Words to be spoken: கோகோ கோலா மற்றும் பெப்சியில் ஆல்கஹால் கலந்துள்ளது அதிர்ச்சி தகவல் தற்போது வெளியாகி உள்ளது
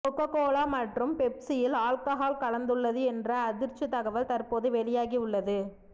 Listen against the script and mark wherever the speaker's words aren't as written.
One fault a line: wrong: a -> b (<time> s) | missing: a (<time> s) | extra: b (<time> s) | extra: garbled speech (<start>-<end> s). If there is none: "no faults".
extra: என்ற (3.1 s)